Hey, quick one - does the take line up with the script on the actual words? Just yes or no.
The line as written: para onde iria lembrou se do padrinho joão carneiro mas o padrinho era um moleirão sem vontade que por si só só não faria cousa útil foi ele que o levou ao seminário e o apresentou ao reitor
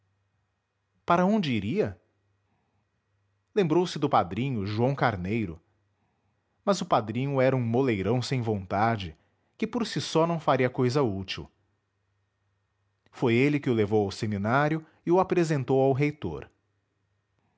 no